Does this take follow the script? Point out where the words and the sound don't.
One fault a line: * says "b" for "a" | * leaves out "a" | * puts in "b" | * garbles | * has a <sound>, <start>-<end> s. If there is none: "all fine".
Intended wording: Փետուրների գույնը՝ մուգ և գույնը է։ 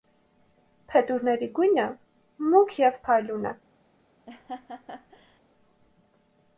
* says "փայլուն" for "գույնը"
* has a laugh, 4.3-5.4 s